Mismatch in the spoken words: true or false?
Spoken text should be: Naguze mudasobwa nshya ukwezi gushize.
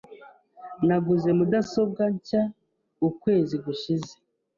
false